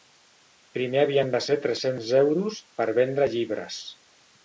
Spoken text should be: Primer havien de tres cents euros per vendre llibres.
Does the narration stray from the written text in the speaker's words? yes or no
yes